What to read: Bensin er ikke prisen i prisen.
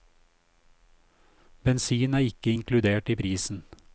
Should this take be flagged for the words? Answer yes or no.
yes